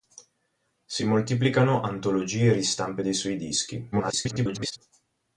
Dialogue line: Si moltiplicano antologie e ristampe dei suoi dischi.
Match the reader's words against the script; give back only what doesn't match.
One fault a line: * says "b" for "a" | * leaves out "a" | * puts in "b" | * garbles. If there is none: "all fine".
* garbles